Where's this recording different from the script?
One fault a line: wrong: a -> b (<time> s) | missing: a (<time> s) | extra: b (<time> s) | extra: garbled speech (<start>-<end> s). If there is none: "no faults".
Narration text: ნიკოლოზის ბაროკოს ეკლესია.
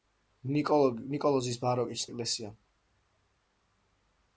no faults